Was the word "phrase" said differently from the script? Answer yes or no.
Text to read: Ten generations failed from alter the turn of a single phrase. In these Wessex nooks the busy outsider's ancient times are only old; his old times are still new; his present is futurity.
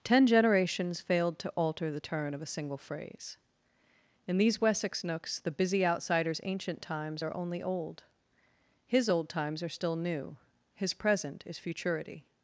no